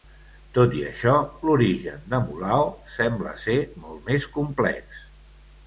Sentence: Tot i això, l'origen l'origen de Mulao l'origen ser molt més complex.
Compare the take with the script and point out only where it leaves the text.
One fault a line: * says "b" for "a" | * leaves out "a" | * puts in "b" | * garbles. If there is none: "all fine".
* leaves out "l'origen"
* says "sembla" for "l'origen"